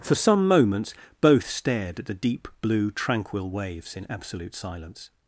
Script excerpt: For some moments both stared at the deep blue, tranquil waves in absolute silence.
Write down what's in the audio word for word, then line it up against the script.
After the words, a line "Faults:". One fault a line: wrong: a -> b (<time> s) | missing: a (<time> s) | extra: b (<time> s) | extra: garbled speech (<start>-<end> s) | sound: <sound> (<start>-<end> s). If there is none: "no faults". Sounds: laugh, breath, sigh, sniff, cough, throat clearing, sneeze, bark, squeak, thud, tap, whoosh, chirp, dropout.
For some moments both stared at the deep blue, tranquil waves in absolute silence.
Faults:
no faults